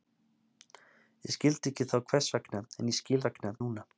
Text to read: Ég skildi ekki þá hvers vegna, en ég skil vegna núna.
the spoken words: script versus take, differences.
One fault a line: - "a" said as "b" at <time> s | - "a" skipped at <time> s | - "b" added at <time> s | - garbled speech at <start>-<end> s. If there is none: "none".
none